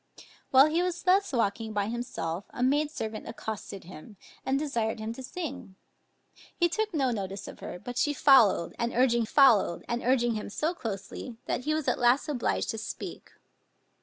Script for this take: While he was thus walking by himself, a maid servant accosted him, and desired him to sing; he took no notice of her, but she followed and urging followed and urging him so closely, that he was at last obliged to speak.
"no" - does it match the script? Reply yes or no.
yes